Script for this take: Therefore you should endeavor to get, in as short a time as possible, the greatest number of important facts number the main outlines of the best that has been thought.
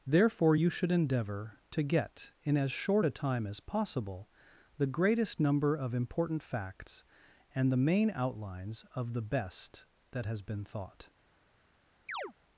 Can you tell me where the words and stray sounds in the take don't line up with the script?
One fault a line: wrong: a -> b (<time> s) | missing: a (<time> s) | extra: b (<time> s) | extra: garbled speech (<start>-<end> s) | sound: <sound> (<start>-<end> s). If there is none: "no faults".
wrong: number -> and (7.5 s)
sound: chirp (12.1-12.3 s)